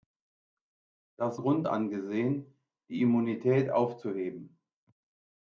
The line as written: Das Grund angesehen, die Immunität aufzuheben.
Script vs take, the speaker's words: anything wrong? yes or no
no